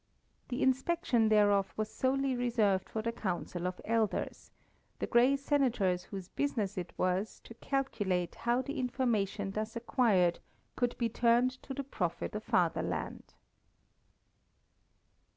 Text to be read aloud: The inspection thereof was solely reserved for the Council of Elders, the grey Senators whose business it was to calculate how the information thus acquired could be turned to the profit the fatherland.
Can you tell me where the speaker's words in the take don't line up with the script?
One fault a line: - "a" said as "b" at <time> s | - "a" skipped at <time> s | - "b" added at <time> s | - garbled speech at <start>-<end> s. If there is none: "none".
none